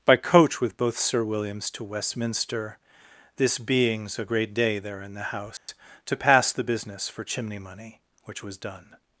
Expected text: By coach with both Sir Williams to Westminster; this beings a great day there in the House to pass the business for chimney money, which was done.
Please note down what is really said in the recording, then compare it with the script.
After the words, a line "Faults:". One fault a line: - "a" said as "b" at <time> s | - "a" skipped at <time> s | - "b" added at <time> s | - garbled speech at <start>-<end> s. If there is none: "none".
By coach with both Sir Williams to Westminster; this beings a great day there in the House to pass the business for chimney money, which was done.
Faults:
none